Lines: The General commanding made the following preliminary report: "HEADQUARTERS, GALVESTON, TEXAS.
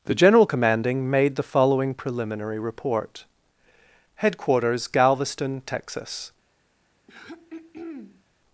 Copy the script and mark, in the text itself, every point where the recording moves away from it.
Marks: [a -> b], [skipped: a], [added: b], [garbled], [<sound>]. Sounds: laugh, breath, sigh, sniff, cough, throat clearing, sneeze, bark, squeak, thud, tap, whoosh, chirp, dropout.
The General commanding made the following preliminary report: "HEADQUARTERS, GALVESTON, TEXAS. [throat clearing]